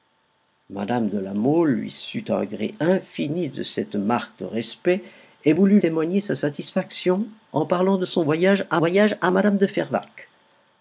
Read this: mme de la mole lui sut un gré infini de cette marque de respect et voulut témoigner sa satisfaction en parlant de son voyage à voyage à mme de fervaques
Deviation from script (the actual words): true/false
false